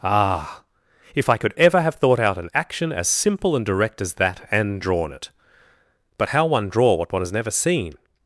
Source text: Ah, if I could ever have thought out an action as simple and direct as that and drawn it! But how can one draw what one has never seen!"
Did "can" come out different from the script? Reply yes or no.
yes